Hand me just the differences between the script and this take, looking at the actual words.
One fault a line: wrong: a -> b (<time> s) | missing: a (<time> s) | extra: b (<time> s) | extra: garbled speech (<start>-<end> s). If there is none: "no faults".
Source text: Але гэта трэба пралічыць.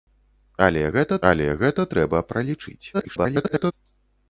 extra: але гэта (1.3 s)
extra: garbled speech (2.9-3.7 s)